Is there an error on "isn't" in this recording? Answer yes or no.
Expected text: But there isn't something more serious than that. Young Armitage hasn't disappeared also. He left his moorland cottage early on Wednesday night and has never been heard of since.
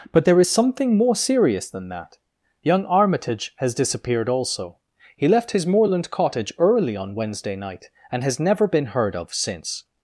yes